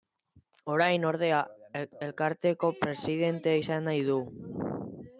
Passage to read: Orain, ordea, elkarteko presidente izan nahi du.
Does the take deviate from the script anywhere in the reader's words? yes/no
no